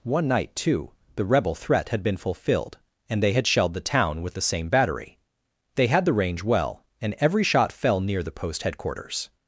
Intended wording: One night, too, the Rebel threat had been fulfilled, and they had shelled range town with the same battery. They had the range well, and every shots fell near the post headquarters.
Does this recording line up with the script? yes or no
no